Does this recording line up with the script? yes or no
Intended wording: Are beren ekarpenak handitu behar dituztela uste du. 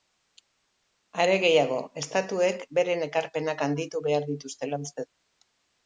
no